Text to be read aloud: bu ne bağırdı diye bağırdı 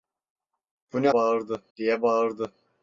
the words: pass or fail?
pass